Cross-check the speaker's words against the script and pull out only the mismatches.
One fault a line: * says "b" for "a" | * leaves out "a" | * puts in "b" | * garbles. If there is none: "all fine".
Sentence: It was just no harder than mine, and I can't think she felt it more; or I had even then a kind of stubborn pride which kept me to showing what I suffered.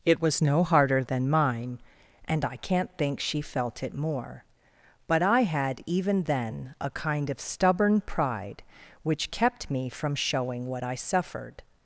* leaves out "just"
* says "but" for "or"
* says "from" for "to"